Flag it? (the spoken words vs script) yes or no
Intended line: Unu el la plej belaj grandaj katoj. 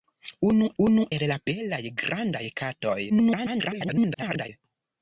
yes